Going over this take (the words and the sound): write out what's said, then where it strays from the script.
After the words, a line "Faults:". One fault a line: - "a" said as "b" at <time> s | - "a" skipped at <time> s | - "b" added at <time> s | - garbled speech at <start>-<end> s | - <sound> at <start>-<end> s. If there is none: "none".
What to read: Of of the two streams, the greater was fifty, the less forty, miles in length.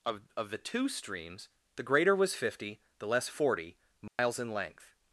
Of of the two streams, the greater was fifty, the less forty, miles in length.
Faults:
- dropout at 4.1-4.2 s